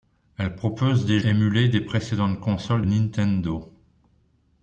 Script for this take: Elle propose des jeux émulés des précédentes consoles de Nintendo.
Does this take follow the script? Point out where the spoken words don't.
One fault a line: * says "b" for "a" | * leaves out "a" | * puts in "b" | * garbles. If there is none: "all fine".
* leaves out "jeux"
* leaves out "de"